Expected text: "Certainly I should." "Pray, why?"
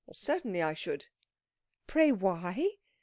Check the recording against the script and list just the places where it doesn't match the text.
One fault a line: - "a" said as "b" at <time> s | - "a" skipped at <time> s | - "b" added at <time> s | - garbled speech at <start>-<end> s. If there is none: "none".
none